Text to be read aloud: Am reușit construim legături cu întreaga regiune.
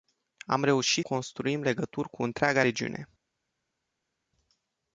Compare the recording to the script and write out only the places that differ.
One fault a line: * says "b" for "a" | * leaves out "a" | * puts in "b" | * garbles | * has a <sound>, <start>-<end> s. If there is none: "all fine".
all fine